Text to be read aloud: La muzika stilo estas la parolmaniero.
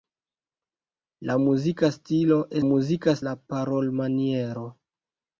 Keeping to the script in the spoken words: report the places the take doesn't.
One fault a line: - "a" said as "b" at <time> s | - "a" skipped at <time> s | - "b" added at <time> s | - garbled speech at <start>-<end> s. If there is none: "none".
- "estas" said as "muzika" at 2.7 s